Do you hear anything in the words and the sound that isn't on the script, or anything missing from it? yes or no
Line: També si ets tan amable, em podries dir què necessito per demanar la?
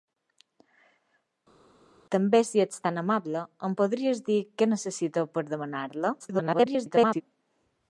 yes